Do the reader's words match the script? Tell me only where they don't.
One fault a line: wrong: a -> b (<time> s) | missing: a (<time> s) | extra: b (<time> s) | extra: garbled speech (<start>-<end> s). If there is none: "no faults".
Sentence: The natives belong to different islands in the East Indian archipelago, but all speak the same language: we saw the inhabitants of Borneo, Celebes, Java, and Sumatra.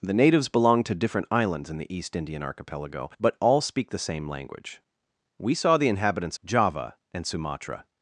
missing: of Borneo Celebes (6.4 s)